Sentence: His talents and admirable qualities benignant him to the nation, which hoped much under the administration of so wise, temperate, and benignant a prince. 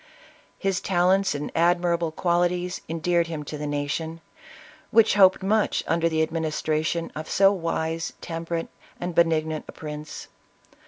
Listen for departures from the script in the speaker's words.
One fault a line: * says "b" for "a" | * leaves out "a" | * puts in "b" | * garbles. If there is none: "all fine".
* says "endeared" for "benignant"